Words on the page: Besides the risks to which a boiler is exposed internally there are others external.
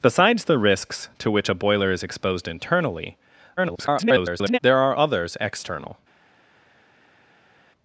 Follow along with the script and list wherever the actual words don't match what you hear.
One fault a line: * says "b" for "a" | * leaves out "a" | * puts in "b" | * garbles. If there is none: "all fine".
* garbles